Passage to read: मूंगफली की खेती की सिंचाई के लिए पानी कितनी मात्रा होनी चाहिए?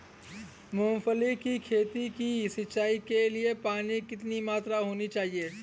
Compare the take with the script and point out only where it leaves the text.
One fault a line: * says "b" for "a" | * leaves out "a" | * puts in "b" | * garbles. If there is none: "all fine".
all fine